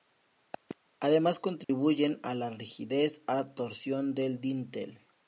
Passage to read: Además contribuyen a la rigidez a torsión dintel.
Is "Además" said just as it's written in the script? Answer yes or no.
yes